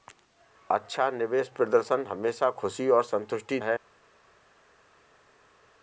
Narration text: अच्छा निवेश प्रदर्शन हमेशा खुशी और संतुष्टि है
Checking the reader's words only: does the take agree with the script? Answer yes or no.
yes